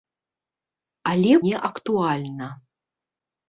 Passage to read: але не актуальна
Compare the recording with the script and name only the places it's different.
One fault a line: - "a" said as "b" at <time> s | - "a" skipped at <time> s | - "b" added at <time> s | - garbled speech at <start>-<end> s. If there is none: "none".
none